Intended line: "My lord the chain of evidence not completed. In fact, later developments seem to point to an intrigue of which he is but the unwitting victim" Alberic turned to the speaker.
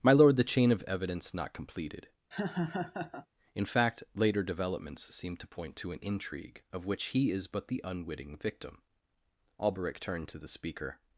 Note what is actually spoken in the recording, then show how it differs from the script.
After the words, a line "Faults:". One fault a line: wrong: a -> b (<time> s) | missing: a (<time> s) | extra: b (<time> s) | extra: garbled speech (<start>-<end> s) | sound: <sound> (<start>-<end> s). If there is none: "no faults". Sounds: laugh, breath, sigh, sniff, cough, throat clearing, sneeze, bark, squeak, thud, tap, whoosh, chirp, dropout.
"My lord the chain of evidence not completed. In fact, later developments seem to point to an intrigue of which he is but the unwitting victim" Alberic turned to the speaker.
Faults:
sound: laugh (2.3-3.3 s)